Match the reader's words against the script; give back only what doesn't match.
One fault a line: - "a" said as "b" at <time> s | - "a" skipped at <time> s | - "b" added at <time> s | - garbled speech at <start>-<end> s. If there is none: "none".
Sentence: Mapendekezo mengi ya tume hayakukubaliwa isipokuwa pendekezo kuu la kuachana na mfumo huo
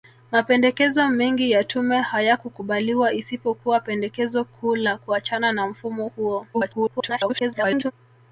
- garbled speech at 6.5-7.9 s